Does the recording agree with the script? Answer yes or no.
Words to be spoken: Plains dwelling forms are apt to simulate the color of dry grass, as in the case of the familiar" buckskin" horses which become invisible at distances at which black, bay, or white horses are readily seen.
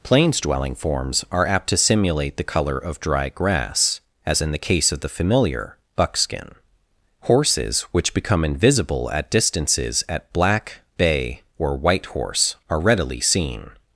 no